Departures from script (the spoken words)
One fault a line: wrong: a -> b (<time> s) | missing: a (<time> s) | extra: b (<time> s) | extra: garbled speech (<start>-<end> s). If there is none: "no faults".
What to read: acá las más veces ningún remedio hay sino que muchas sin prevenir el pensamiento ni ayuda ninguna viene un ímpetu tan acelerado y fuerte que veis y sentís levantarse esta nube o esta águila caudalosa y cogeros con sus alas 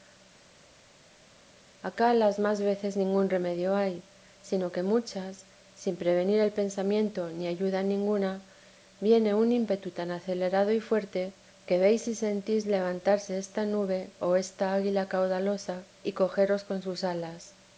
no faults